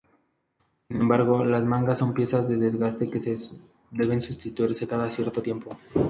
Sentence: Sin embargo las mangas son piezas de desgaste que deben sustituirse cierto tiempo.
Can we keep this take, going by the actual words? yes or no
no